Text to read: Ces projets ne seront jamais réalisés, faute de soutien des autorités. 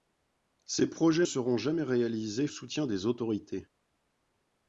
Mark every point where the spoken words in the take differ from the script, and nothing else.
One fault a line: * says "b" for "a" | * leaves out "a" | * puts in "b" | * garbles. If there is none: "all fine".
* leaves out "ne"
* leaves out "faute de"